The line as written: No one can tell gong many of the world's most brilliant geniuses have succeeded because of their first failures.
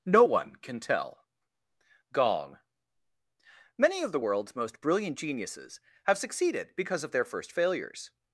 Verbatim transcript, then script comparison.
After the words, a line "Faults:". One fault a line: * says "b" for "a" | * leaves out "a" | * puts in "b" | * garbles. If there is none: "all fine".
No one can tell gong many of the world's most brilliant geniuses have succeeded because of their first failures.
Faults:
all fine